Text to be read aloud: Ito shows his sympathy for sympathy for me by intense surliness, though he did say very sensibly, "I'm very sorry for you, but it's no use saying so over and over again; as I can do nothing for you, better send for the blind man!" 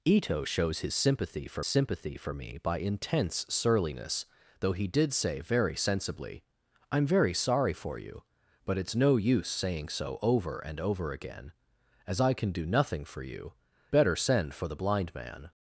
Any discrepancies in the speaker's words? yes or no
no